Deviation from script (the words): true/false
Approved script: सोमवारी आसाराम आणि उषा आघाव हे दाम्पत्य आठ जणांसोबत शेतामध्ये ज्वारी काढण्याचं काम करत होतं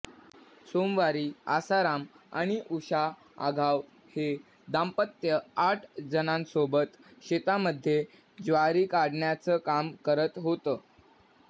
false